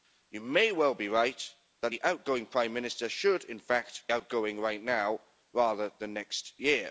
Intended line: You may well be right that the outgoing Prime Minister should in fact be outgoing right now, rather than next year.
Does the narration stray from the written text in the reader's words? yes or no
yes